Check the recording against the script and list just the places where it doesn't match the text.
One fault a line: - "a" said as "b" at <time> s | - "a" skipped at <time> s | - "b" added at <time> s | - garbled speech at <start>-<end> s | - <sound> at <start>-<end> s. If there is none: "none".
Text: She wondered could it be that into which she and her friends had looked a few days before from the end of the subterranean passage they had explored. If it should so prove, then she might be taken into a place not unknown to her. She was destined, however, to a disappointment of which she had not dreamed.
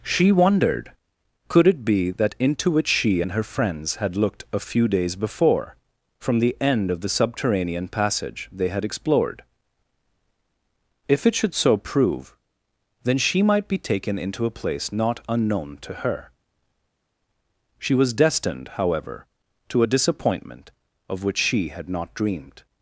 none